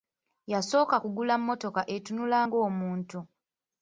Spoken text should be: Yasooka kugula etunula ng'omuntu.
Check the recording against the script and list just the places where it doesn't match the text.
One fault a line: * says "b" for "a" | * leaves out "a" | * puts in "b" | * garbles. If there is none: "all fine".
* puts in "mmotoka"